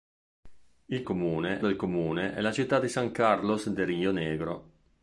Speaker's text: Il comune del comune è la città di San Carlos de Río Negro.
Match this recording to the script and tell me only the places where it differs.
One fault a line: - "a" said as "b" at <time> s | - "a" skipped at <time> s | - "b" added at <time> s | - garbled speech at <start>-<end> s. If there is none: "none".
none